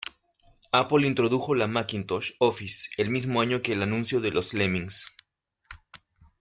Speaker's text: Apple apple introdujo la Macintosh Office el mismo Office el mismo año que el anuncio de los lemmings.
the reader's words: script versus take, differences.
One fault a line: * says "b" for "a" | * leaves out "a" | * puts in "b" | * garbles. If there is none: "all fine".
* leaves out "apple"
* leaves out "Office el mismo"